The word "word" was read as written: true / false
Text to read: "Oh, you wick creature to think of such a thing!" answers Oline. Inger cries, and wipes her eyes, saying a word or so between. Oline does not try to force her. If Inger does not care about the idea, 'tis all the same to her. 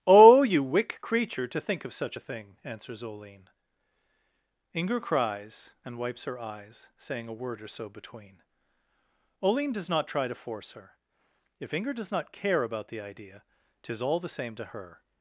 true